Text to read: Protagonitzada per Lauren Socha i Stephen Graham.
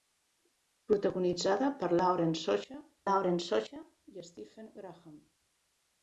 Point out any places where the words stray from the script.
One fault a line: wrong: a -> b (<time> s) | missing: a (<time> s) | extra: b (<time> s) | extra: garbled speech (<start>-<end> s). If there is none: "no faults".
extra: Lauren Socha (3.1 s)